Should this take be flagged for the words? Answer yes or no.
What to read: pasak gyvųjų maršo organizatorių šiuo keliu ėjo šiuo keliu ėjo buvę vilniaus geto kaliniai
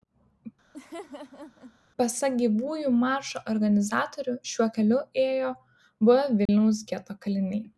yes